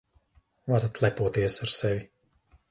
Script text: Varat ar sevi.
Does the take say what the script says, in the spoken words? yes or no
no